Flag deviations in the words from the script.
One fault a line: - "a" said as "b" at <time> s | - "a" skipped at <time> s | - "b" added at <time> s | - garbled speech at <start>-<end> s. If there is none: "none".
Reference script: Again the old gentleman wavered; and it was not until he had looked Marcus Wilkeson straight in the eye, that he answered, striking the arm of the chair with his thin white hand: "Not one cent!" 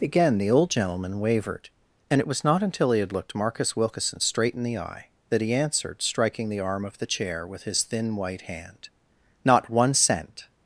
none